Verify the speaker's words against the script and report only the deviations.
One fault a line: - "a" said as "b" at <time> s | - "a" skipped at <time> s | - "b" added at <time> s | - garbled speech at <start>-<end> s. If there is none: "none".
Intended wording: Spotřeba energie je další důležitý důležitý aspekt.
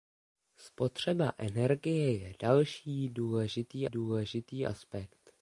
none